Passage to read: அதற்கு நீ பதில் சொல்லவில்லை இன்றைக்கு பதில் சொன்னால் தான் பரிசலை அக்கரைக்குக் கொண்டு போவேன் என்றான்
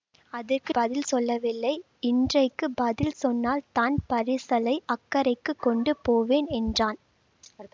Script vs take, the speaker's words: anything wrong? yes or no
yes